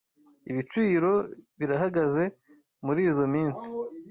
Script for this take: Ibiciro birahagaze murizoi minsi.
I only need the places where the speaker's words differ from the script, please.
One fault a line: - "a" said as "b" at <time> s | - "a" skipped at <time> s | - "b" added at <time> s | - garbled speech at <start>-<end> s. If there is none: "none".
none